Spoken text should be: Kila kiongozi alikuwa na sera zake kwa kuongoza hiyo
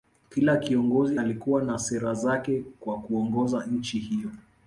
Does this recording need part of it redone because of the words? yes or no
yes